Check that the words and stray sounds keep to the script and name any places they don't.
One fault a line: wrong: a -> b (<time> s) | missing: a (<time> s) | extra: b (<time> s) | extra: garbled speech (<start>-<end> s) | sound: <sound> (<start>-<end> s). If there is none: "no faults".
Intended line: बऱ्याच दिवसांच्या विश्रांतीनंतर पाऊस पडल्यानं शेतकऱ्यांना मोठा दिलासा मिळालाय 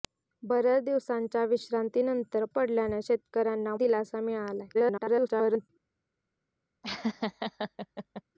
missing: पाऊस (2.5 s)
missing: मोठा (3.7 s)
extra: garbled speech (4.7-5.7 s)
sound: laugh (6.8-8.2 s)